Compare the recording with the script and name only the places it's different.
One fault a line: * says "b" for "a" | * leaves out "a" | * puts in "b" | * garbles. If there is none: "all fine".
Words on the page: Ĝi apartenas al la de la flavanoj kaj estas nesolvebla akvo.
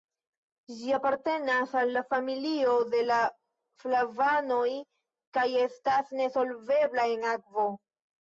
* puts in "familio"
* puts in "en"